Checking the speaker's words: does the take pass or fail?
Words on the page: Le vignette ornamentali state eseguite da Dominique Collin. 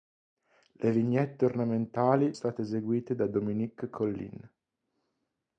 pass